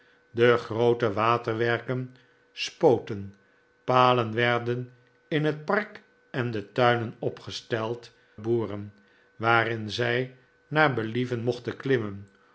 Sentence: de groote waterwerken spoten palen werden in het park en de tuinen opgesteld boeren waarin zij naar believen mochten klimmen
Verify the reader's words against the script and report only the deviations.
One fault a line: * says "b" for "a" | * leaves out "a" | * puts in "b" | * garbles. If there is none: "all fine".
all fine